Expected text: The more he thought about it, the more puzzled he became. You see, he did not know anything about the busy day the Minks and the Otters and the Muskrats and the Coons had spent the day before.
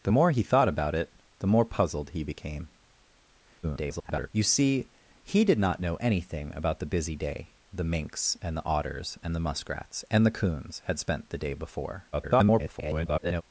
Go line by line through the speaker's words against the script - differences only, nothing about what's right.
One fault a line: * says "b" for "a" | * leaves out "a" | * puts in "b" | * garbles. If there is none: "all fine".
* garbles
* garbles